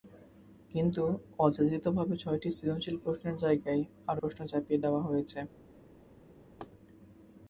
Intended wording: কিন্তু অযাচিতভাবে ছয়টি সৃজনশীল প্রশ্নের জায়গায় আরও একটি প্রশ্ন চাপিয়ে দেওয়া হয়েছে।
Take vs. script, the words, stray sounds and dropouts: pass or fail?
fail